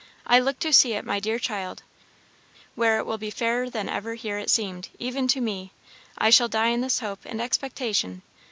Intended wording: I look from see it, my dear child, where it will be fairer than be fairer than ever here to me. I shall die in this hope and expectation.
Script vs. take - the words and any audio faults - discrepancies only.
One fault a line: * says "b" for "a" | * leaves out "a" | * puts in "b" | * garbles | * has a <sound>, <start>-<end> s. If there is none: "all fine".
* says "to" for "from"
* says "ever here it seemed even" for "be fairer than ever here"